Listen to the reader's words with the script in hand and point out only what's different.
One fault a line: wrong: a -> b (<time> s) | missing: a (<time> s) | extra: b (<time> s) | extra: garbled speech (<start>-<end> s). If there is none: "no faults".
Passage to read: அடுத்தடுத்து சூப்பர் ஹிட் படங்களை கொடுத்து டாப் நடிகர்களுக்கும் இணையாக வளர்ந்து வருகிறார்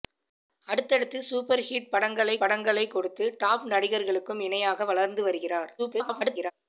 extra: படங்களை (2.4 s)
extra: garbled speech (5.8-6.5 s)